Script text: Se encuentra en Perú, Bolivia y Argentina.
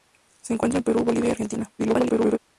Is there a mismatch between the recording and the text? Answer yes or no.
yes